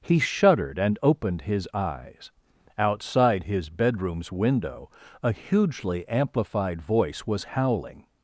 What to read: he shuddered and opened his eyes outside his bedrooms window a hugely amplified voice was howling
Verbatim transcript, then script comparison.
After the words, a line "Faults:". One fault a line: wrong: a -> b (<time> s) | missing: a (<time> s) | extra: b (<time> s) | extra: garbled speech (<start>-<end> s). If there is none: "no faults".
he shuddered and opened his eyes outside his bedrooms window a hugely amplified voice was howling
Faults:
no faults